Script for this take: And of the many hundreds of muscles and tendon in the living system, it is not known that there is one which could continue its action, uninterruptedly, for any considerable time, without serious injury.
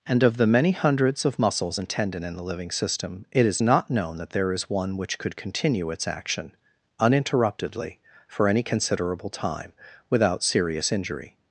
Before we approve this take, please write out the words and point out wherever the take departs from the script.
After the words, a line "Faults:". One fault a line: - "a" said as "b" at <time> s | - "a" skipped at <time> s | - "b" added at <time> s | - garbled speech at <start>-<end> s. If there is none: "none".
And of the many hundreds of muscles and tendon in the living system, it is not known that there is one which could continue its action, uninterruptedly, for any considerable time, without serious injury.
Faults:
none